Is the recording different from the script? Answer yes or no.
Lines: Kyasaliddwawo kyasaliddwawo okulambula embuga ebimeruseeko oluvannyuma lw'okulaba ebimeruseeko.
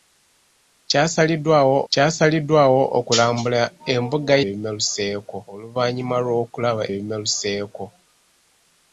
no